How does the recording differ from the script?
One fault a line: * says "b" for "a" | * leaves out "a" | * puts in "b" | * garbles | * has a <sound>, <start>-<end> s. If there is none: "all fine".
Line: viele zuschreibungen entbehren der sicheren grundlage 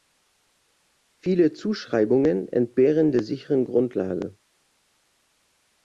all fine